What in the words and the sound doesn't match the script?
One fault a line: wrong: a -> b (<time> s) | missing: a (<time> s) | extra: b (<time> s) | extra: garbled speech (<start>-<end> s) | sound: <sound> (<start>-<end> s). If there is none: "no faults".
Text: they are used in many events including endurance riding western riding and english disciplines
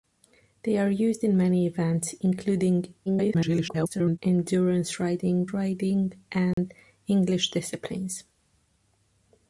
extra: garbled speech (3.1-4.2 s)
missing: western (5.5 s)
sound: dropout (6.5-6.6 s)